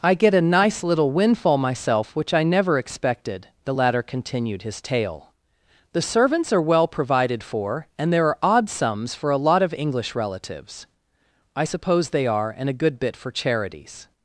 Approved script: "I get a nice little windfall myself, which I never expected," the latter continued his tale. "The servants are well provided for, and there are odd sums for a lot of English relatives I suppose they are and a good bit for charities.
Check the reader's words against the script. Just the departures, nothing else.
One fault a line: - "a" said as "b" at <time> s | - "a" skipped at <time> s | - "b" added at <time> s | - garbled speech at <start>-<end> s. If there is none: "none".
none